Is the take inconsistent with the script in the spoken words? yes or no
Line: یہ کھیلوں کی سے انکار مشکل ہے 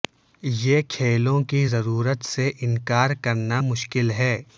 yes